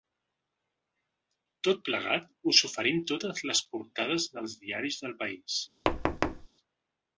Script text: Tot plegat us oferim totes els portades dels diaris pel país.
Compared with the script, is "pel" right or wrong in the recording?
wrong